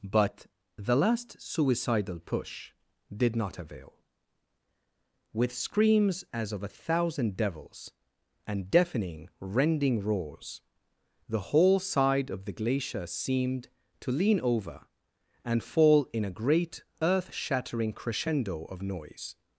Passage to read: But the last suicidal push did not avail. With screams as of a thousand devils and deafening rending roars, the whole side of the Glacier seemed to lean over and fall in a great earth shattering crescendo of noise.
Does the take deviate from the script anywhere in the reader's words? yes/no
no